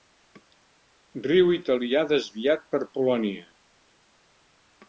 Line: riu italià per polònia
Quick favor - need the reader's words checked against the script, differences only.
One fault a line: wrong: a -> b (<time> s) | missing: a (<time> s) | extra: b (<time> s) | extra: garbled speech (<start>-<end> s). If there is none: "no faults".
extra: desviat (2.1 s)